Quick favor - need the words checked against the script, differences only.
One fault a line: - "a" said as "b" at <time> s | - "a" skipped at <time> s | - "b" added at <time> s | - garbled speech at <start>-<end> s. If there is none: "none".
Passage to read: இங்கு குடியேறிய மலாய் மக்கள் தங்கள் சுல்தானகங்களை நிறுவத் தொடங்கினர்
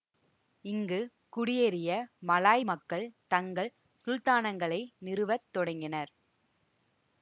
none